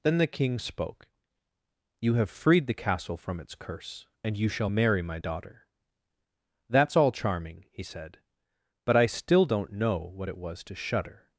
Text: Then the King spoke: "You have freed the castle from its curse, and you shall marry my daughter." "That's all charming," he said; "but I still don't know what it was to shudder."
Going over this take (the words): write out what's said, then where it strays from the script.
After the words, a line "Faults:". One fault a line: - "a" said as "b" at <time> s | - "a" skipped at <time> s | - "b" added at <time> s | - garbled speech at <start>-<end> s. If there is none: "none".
Then the King spoke: "You have freed the castle from its curse, and you shall marry my daughter." "That's all charming," he said; "but I still don't know what it was to shudder."
Faults:
none